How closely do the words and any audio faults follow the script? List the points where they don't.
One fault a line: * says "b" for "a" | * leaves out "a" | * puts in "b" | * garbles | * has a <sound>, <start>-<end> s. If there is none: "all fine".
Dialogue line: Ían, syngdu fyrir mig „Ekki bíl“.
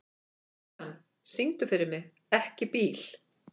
all fine